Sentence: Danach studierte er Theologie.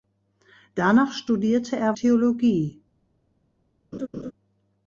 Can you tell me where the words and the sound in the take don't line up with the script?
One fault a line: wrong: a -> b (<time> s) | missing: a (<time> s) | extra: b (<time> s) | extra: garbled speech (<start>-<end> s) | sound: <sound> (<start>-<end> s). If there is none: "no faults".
sound: laugh (3.9-4.3 s)